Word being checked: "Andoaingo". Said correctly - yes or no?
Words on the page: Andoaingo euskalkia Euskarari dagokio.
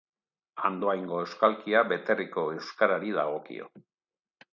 yes